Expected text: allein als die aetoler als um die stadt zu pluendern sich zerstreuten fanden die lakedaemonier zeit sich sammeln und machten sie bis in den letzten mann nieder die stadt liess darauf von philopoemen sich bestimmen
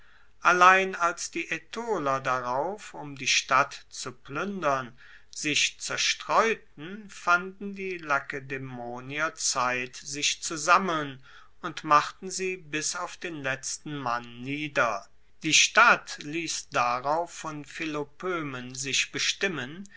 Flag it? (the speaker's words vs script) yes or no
yes